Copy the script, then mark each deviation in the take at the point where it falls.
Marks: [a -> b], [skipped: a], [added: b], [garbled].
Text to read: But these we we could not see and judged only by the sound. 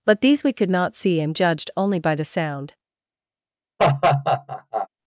But these we [skipped: we] could not see and judged only by the sound.